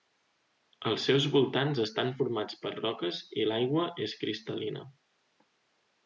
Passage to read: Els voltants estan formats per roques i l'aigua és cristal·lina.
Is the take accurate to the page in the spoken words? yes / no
no